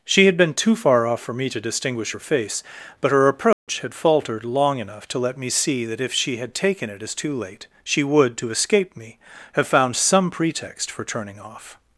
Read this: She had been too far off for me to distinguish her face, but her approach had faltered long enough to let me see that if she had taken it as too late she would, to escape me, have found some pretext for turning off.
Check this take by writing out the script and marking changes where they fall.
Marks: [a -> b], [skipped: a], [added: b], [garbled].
She had been too far off for me to distinguish her face, but her approach had faltered long enough to let me see that if she had taken it as too late she would, to escape me, have found some pretext for turning off.